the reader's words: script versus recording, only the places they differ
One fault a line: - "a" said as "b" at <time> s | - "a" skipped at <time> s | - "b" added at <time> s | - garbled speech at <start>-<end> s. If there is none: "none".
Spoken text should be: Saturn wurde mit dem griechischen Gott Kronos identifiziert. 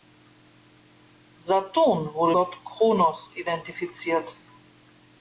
- "mit dem griechischen" skipped at 2.4 s